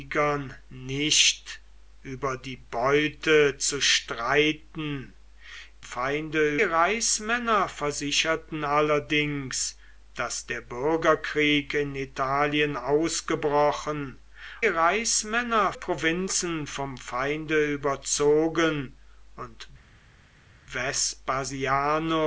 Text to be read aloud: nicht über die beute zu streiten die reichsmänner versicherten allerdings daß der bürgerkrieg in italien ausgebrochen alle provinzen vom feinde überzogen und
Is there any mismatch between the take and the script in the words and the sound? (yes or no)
yes